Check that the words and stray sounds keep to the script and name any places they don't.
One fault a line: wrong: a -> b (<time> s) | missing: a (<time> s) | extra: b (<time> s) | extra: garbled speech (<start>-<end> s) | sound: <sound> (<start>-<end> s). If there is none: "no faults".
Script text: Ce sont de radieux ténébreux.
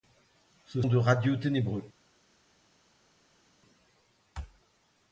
missing: sont (0.8 s)